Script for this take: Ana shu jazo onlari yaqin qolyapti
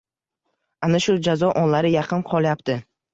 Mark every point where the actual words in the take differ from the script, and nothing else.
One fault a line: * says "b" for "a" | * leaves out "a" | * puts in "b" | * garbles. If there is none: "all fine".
all fine